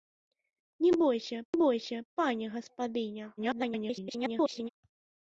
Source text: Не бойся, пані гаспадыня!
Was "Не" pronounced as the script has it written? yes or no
yes